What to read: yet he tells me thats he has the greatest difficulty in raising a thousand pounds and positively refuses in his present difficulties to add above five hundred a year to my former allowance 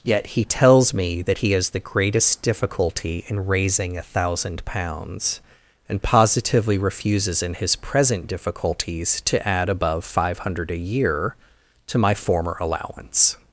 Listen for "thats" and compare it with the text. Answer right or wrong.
wrong